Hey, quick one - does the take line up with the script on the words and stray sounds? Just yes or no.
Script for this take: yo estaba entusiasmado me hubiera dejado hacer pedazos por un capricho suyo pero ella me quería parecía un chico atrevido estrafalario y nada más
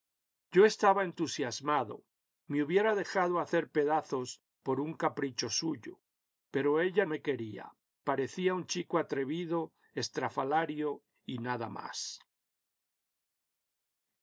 yes